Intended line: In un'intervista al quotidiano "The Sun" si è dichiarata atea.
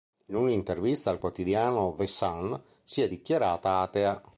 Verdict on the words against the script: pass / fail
pass